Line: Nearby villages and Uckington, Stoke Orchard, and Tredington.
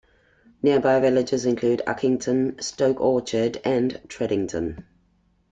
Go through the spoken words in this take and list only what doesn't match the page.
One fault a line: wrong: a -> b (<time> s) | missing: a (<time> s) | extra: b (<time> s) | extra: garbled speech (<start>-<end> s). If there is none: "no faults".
wrong: and -> include (1.4 s)